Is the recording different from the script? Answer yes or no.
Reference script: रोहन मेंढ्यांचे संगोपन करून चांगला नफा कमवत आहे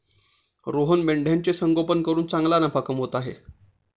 no